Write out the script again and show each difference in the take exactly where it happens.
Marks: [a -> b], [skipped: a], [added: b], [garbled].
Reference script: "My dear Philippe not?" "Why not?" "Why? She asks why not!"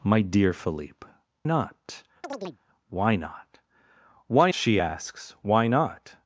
"My dear Philippe not?" "Why not?" "Why? She asks why not!"